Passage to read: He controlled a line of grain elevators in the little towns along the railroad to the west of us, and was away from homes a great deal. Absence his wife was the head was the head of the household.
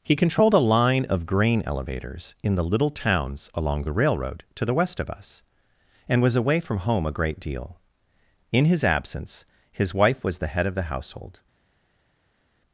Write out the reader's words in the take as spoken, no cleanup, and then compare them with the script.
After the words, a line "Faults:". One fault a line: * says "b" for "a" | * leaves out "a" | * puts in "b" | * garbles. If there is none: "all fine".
He controlled a line of grain elevators in the little towns along the railroad to the west of us, and was away from home a great deal. In his absence his wife was the head of the household.
Faults:
* says "home" for "homes"
* puts in "In his"
* leaves out "was the head"